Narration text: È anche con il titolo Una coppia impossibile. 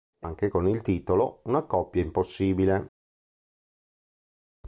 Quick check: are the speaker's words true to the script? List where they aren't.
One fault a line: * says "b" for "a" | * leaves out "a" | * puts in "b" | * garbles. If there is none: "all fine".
all fine